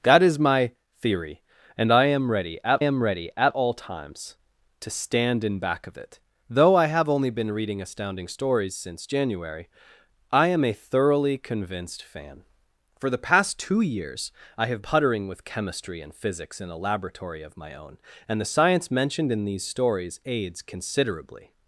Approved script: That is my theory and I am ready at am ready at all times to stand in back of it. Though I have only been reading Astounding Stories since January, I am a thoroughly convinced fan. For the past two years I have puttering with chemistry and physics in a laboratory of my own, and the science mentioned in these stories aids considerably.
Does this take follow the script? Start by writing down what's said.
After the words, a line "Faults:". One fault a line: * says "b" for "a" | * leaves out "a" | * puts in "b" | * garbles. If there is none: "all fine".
That is my theory and I am ready at am ready at all times to stand in back of it. Though I have only been reading Astounding Stories since January, I am a thoroughly convinced fan. For the past two years I have puttering with chemistry and physics in a laboratory of my own, and the science mentioned in these stories aids considerably.
Faults:
all fine